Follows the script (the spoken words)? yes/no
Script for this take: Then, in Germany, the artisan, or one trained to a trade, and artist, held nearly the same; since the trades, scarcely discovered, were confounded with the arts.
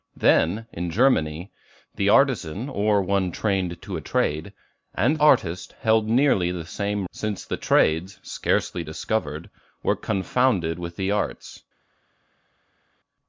yes